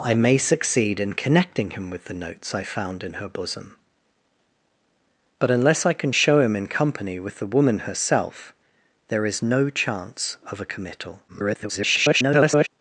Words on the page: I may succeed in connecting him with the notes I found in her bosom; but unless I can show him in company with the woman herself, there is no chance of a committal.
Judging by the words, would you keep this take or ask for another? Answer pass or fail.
fail